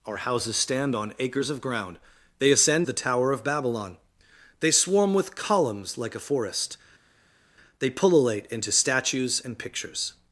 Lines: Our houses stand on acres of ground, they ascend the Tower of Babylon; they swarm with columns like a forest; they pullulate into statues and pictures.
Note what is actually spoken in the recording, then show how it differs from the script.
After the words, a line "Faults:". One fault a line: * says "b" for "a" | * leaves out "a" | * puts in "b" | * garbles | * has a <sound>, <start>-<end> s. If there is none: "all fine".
Our houses stand on acres of ground, they ascend the Tower of Babylon; they swarm with columns like a forest; they pullulate into statues and pictures.
Faults:
all fine